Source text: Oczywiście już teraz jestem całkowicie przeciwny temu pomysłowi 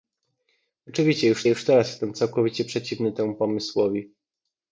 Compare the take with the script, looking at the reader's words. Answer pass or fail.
fail